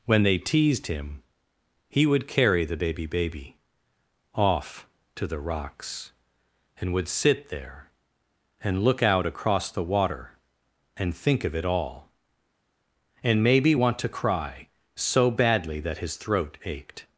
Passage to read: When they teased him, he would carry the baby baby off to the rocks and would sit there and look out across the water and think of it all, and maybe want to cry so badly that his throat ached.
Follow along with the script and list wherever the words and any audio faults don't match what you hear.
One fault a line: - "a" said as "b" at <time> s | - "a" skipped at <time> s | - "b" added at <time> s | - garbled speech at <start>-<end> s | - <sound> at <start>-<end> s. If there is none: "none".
none